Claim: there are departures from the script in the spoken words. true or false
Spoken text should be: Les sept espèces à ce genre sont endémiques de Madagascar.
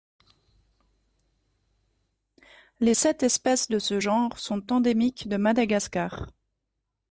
true